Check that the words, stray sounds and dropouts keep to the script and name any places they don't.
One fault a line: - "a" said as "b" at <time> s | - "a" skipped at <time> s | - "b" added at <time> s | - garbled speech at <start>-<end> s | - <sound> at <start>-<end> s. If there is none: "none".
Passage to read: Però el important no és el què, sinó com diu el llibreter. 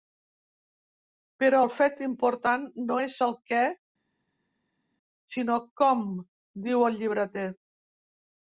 - "fet" added at 1.8 s